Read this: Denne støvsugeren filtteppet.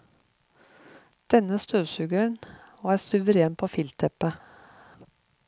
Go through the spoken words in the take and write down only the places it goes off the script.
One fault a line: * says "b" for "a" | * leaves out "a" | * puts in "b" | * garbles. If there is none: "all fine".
* puts in "var suveren på"